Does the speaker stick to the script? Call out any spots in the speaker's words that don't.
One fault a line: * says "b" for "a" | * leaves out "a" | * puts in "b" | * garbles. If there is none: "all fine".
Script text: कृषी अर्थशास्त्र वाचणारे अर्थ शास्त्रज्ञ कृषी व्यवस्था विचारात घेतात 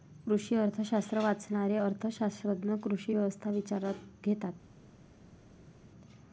all fine